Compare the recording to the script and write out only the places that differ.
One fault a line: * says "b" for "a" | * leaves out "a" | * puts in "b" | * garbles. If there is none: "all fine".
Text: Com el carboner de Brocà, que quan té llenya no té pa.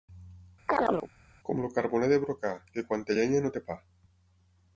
all fine